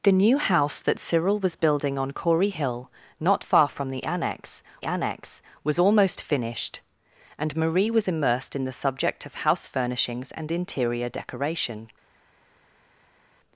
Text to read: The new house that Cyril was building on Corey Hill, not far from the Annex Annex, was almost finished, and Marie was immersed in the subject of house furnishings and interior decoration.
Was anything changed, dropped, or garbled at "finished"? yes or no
no